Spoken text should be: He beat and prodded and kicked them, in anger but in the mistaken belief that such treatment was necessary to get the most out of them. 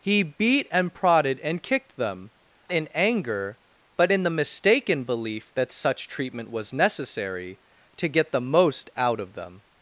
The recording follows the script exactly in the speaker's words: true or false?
true